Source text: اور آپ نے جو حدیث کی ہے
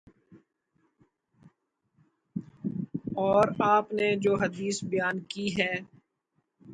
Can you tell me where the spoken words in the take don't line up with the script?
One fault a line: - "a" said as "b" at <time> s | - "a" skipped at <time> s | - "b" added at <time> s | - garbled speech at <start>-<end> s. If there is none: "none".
- "بیان" added at 4.8 s